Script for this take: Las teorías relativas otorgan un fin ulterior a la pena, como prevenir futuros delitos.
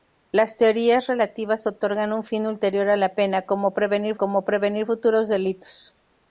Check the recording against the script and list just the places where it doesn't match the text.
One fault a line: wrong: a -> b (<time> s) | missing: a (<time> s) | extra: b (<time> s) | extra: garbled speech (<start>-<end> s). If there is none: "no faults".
extra: como prevenir (4.1 s)